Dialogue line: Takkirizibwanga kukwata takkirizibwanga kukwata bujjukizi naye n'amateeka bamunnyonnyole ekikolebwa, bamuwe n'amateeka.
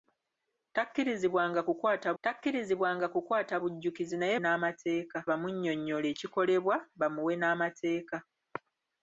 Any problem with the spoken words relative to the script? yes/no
no